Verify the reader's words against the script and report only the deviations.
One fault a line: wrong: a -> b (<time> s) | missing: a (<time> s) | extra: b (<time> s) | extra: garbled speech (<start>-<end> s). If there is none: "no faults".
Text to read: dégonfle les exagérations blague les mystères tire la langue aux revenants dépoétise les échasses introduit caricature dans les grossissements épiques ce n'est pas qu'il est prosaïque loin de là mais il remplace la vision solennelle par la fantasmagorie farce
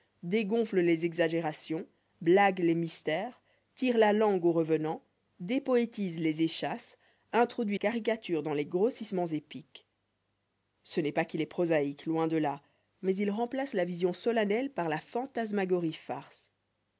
no faults